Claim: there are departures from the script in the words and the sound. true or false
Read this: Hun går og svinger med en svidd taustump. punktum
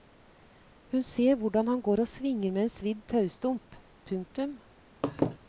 true